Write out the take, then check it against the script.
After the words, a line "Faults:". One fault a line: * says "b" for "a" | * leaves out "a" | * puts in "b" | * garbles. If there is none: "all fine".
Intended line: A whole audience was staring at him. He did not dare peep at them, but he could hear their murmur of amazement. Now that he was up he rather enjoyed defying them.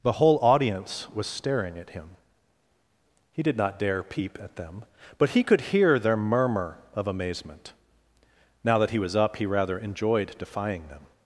The whole audience was staring at him. He did not dare peep at them, but he could hear their murmur of amazement. Now that he was up he rather enjoyed defying them.
Faults:
* says "The" for "A"